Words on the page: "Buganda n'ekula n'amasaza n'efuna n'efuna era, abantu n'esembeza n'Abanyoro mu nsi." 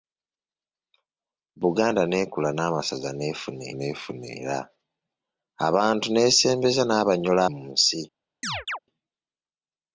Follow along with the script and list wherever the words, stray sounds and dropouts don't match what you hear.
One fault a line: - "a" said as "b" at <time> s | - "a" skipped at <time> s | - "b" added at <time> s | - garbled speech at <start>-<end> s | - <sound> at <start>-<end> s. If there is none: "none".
- chirp at 8.4-8.8 s